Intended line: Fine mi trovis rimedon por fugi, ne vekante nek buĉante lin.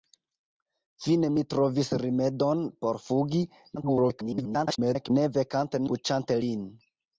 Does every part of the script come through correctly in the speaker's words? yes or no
no